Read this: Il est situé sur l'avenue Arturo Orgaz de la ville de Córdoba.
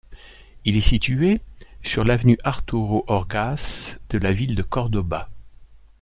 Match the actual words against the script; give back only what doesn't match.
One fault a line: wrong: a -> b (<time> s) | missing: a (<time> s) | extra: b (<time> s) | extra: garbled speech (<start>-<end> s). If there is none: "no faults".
no faults